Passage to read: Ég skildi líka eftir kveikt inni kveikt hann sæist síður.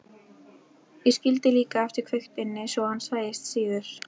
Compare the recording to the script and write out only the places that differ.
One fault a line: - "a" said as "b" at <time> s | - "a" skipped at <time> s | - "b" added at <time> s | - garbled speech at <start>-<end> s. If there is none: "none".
- "kveikt" said as "svo" at 2.8 s